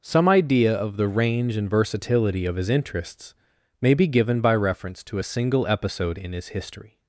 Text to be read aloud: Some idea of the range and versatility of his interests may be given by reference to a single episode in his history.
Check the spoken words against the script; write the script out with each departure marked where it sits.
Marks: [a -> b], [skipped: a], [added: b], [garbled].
Some idea of the range and versatility of his interests may be given by reference to a single episode in his history.